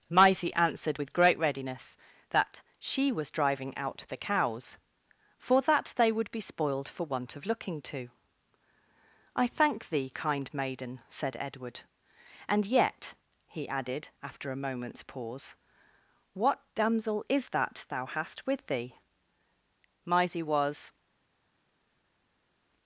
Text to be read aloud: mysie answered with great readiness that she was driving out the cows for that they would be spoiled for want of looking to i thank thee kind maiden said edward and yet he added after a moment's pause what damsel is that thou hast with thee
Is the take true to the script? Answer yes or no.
no